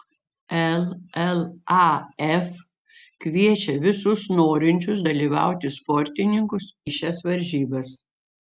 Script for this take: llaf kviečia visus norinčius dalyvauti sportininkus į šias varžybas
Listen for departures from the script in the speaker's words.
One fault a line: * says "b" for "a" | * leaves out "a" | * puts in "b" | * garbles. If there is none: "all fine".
all fine